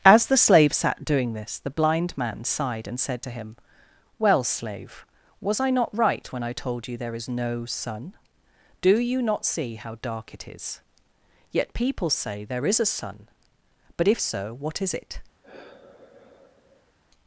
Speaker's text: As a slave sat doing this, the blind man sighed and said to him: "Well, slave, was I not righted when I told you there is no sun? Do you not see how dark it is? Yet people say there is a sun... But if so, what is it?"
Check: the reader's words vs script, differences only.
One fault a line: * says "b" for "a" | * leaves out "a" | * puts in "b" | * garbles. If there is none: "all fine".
* says "the" for "a"
* says "right" for "righted"